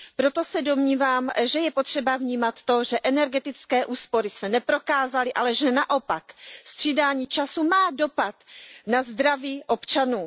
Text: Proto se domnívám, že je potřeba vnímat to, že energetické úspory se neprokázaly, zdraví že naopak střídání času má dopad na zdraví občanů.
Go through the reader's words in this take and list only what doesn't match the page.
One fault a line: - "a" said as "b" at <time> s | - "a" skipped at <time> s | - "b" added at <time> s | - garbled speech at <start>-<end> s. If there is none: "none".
- "zdraví" said as "ale" at 5.3 s